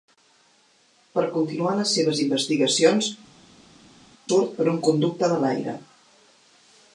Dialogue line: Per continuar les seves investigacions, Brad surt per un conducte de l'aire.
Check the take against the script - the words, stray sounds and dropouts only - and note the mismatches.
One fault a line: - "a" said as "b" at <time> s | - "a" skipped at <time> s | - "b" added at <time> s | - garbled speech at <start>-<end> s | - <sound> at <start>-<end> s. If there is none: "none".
- "Brad" skipped at 3.1 s